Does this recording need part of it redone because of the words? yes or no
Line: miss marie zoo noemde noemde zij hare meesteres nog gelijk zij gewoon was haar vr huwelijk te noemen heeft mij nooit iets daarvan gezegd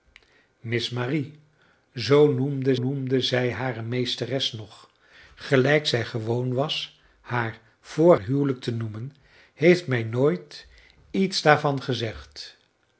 no